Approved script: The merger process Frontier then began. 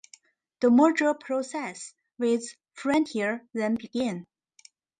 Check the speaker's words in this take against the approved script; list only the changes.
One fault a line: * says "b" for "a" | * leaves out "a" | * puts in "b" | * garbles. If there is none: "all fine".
* puts in "with"